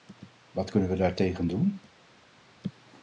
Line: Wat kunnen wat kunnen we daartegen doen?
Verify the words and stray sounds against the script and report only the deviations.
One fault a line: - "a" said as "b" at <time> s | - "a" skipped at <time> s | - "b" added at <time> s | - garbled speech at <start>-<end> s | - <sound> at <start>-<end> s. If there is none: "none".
- "wat kunnen" skipped at 0.9 s